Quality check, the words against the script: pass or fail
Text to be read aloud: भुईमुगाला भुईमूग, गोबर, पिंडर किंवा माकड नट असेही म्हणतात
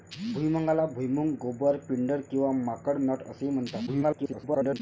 fail